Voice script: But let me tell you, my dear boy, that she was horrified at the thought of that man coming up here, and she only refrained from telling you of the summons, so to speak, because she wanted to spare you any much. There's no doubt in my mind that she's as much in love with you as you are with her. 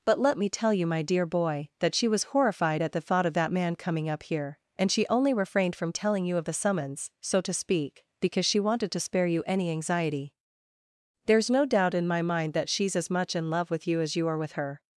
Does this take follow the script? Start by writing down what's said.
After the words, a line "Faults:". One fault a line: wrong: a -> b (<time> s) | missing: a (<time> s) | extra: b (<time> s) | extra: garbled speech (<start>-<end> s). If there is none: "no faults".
But let me tell you, my dear boy, that she was horrified at the thought of that man coming up here, and she only refrained from telling you of the summons, so to speak, because she wanted to spare you any anxiety. There's no doubt in my mind that she's as much in love with you as you are with her.
Faults:
wrong: much -> anxiety (9.7 s)